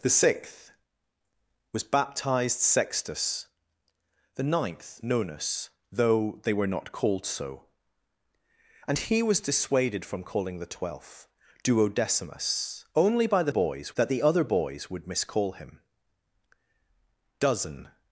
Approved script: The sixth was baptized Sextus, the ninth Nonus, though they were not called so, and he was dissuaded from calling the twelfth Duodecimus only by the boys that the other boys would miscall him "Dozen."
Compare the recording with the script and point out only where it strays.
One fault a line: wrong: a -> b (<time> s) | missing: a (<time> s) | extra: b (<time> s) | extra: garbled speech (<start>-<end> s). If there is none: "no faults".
no faults